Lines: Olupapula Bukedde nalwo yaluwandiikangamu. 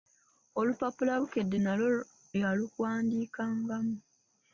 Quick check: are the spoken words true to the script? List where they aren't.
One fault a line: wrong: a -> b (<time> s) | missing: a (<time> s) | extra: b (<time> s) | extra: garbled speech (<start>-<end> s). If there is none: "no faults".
no faults